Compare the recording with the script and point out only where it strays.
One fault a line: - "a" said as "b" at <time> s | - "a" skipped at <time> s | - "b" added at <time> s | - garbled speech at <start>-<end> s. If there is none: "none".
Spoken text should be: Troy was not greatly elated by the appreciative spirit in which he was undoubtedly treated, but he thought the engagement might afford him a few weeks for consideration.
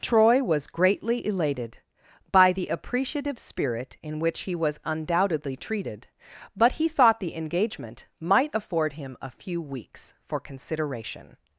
- "not" skipped at 0.7 s